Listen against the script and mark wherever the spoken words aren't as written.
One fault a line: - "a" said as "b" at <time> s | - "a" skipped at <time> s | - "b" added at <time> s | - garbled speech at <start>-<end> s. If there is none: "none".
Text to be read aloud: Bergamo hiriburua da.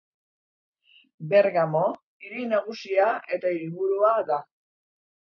- "hiri nagusia eta" added at 2.3 s